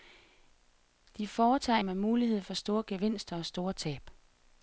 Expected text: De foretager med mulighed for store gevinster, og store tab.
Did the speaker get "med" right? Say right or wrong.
right